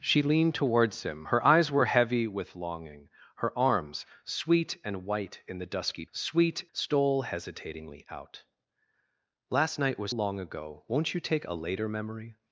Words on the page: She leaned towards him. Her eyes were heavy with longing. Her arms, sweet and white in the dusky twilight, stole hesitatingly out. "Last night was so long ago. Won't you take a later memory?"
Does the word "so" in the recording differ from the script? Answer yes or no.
yes